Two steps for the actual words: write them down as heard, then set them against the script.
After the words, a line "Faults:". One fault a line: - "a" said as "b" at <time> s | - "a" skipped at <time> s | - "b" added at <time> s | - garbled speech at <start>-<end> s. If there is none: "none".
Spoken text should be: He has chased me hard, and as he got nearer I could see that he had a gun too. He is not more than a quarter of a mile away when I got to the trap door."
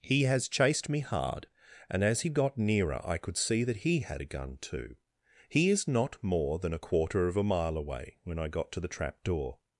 He has chased me hard, and as he got nearer I could see that he had a gun too. He is not more than a quarter of a mile away when I got to the trap door."
Faults:
none